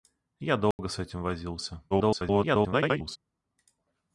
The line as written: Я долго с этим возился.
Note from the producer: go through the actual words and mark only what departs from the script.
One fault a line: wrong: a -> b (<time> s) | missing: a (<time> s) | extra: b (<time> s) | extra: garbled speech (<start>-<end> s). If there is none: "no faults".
extra: garbled speech (1.9-3.2 s)